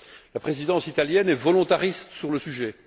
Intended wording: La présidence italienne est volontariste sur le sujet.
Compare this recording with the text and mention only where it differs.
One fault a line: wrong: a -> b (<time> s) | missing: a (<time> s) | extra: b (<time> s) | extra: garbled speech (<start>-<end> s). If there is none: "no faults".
no faults